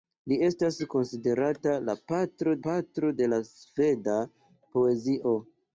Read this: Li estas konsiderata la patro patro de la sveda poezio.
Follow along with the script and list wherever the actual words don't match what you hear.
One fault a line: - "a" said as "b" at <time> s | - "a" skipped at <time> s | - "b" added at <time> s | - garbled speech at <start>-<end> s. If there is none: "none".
none